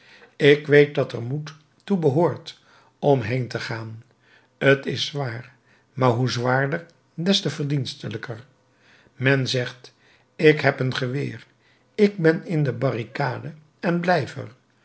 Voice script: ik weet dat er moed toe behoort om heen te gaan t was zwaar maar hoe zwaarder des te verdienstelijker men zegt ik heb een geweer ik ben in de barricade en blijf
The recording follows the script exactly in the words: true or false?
false